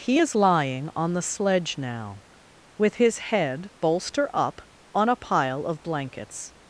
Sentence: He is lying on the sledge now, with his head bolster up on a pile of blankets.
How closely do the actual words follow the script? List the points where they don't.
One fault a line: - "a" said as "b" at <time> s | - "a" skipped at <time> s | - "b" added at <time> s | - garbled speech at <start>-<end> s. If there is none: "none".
none